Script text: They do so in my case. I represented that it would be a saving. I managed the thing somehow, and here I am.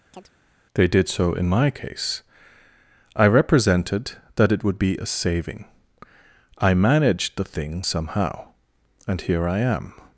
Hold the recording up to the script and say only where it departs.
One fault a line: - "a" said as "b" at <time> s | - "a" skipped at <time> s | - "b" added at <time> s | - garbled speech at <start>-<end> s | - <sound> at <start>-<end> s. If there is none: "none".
- chirp at 0.1-0.3 s
- "do" said as "did" at 0.9 s